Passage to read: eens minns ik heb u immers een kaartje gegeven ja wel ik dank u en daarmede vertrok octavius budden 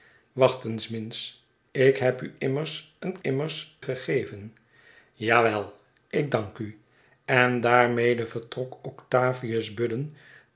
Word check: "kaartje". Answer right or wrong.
wrong